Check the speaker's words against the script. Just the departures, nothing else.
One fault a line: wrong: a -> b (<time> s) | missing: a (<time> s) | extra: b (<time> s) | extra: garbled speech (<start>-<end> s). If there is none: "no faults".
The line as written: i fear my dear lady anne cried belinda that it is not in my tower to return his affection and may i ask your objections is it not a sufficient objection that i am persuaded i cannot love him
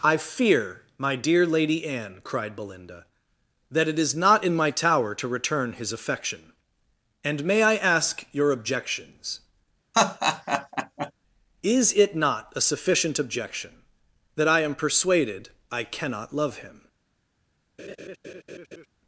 no faults